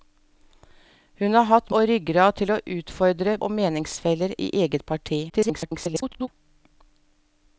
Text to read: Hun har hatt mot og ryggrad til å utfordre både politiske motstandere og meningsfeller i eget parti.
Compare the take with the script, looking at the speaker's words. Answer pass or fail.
fail